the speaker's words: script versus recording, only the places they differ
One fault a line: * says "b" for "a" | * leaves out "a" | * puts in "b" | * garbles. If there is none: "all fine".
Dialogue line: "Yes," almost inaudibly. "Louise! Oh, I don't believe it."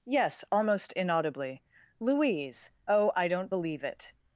all fine